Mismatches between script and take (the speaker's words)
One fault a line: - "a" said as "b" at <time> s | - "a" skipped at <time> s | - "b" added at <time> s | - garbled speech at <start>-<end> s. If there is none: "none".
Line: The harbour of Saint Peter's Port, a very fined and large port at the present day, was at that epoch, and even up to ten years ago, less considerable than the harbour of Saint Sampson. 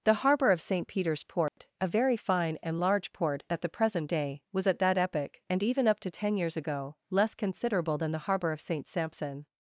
- "fined" said as "fine" at 2.2 s